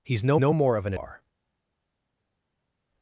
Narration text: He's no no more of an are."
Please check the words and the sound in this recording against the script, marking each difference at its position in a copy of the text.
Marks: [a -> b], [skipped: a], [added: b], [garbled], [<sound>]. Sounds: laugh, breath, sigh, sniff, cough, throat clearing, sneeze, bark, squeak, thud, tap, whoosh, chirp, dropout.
He's no no more of an are."